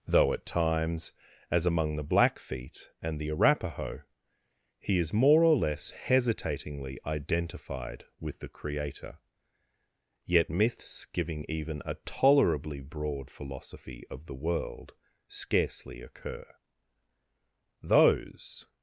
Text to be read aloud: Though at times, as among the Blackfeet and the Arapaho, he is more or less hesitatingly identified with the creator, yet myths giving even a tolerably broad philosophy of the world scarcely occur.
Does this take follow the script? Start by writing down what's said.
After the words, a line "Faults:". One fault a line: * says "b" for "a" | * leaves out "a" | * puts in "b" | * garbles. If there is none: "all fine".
Though at times, as among the Blackfeet and the Arapaho, he is more or less hesitatingly identified with the creator, yet myths giving even a tolerably broad philosophy of the world scarcely occur. Those
Faults:
* puts in "Those"